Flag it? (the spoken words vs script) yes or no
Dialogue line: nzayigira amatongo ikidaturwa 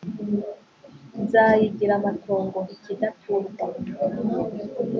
no